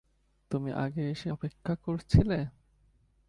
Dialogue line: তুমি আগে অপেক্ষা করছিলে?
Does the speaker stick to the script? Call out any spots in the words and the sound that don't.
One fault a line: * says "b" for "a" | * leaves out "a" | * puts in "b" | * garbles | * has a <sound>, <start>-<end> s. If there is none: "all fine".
* puts in "এসে"